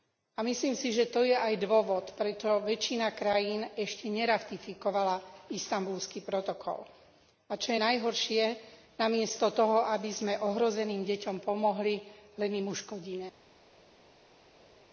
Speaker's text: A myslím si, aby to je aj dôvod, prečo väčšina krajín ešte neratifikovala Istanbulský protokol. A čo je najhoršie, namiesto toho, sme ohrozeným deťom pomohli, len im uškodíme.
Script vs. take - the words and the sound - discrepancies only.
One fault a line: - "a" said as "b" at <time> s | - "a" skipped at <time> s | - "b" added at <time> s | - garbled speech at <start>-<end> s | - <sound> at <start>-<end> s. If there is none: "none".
- "aby" said as "že" at 0.9 s
- "aby" added at 9.9 s